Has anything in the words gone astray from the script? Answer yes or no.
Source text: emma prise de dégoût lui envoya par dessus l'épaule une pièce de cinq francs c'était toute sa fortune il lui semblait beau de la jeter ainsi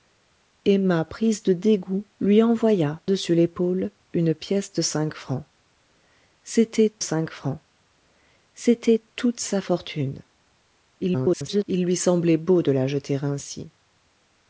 yes